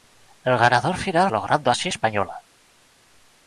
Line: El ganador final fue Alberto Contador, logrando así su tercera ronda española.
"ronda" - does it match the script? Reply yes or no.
no